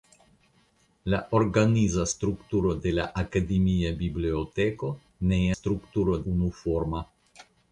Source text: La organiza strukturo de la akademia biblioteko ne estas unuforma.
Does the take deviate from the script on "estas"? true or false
true